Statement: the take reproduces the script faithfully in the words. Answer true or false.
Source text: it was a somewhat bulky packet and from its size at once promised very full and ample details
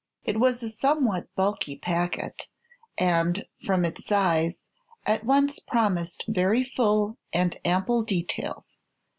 true